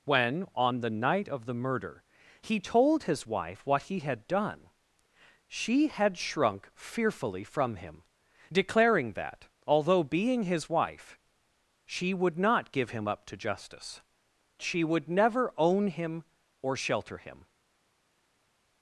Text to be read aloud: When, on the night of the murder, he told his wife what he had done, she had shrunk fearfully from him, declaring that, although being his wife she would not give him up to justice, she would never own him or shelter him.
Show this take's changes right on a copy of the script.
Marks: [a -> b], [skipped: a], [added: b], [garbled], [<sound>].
When, on the night of the murder, he told his wife what he had done, she had shrunk fearfully from him, declaring that, although being his wife she would not give him up to justice, she would never own him or shelter him.